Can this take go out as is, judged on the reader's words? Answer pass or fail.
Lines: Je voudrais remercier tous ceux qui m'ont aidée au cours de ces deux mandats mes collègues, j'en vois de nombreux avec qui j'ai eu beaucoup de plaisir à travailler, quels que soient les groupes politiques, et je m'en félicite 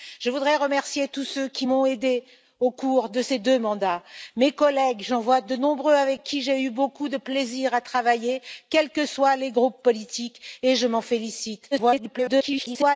fail